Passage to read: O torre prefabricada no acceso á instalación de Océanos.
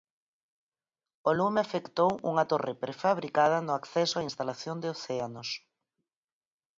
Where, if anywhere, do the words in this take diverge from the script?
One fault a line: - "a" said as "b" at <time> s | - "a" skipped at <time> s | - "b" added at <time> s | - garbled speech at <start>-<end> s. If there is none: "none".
- "lume afectou unha" added at 1.4 s